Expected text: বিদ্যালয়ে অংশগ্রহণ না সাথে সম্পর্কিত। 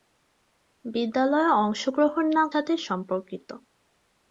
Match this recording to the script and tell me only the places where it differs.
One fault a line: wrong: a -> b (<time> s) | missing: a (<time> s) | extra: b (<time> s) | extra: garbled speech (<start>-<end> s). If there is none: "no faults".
no faults